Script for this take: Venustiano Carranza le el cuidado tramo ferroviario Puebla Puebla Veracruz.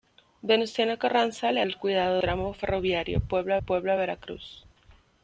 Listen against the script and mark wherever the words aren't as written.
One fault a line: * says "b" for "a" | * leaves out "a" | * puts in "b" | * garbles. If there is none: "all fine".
all fine